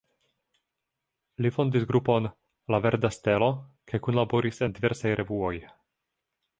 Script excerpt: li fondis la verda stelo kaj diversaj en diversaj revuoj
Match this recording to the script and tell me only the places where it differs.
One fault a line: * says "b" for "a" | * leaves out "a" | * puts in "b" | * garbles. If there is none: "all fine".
* puts in "grupon"
* says "kunlaboris" for "diversaj"